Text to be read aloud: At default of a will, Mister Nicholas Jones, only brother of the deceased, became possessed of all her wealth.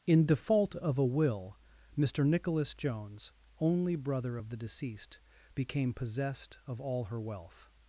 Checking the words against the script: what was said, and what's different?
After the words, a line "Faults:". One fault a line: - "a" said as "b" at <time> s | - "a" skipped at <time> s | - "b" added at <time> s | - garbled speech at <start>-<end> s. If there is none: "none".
In default of a will, Mister Nicholas Jones, only brother of the deceased, became possessed of all her wealth.
Faults:
- "At" said as "In" at 0.1 s